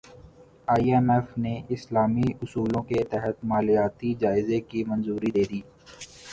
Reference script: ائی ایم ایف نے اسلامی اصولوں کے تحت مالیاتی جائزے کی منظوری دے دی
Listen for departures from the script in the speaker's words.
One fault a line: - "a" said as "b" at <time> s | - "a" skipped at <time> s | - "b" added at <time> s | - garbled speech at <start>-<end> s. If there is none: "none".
none